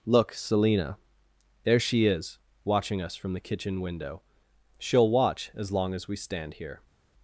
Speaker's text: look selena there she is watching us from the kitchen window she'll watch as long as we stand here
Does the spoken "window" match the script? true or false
true